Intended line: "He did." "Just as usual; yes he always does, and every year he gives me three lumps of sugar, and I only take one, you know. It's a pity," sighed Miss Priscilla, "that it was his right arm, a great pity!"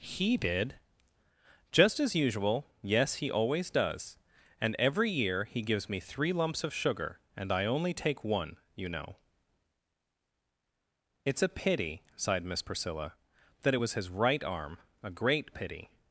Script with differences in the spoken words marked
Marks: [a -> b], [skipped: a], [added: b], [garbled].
"He did." "Just as usual; yes he always does, and every year he gives me three lumps of sugar, and I only take one, you know. It's a pity," sighed Miss Priscilla, "that it was his right arm, a great pity!"